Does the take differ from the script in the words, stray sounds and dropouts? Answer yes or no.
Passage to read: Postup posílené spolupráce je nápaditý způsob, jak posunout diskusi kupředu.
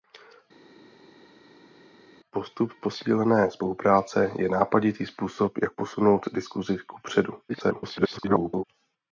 yes